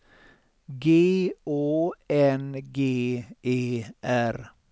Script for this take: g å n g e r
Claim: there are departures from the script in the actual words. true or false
false